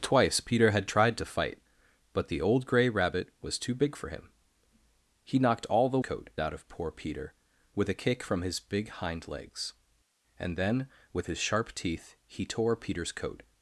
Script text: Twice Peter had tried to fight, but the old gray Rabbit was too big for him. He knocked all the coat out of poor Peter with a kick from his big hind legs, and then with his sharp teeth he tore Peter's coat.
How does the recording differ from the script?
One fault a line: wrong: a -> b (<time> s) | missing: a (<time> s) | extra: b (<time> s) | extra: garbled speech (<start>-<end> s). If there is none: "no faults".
no faults